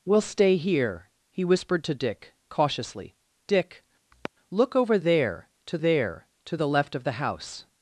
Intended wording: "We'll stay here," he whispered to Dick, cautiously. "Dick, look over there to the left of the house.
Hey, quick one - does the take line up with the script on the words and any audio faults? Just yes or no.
no